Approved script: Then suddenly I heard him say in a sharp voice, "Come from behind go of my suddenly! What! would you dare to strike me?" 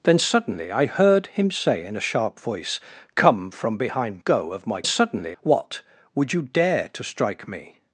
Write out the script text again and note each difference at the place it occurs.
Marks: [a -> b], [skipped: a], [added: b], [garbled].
Then suddenly I heard him say in a sharp voice, "Come from behind go of my suddenly! What! would you dare to strike me?"